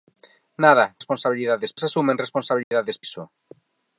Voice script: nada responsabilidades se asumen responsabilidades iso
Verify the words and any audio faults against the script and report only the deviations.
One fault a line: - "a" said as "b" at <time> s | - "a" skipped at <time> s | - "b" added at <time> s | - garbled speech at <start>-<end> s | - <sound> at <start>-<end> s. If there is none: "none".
- dropout at 2.6-2.7 s